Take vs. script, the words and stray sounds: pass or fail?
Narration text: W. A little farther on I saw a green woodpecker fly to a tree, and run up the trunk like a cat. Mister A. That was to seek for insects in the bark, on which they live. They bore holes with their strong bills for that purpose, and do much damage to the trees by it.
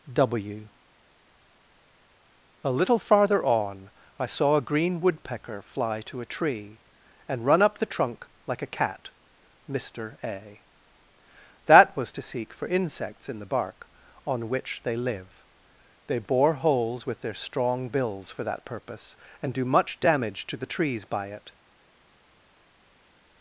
pass